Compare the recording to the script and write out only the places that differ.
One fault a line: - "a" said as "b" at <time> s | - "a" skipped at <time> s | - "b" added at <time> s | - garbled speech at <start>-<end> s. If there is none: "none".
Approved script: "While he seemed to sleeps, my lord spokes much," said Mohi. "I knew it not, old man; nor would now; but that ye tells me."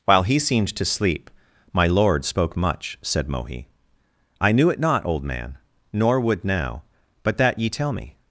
- "sleeps" said as "sleep" at 0.8 s
- "spokes" said as "spoke" at 2.2 s
- "tells" said as "tell" at 7.7 s